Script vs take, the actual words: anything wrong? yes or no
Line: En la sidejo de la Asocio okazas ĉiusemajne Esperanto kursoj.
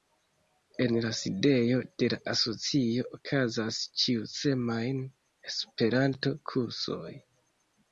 no